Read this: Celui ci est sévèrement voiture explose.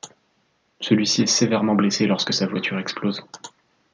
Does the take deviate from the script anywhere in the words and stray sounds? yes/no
yes